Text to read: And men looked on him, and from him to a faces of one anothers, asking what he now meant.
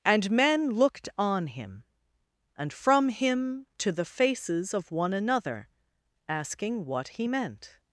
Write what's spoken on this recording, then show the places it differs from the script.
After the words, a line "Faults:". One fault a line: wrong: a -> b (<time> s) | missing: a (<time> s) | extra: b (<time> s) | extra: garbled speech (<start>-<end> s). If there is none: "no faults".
And men looked on him, and from him to the faces of one another, asking what he meant.
Faults:
wrong: a -> the (3.9 s)
wrong: anothers -> another (5.1 s)
missing: now (7.3 s)